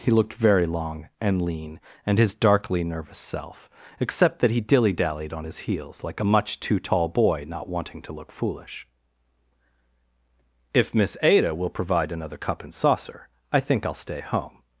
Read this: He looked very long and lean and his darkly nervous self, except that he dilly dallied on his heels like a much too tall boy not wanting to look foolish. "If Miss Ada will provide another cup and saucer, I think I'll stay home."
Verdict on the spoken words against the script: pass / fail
pass